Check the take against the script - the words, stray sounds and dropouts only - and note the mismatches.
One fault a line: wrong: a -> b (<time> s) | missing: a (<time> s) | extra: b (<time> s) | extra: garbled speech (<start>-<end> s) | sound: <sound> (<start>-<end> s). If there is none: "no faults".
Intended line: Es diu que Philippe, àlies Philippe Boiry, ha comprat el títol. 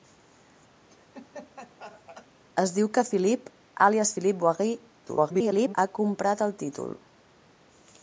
sound: laugh (0.9-2.3 s)
extra: garbled speech (5.1-5.7 s)